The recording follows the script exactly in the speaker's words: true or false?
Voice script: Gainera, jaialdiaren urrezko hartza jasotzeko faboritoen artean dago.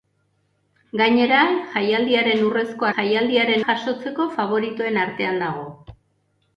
false